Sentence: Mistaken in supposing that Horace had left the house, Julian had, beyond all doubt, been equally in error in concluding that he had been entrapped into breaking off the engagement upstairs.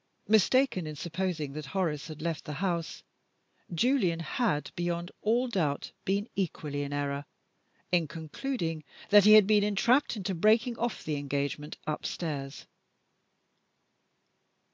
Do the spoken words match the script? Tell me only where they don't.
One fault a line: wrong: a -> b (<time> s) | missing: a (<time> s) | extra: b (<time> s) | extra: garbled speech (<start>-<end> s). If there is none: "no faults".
no faults